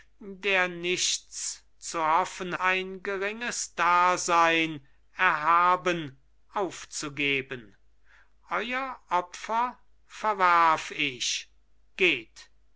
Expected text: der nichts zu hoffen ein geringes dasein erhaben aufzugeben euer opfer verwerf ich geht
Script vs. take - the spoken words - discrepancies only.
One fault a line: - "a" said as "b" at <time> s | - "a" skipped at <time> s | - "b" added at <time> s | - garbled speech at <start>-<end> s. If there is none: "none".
none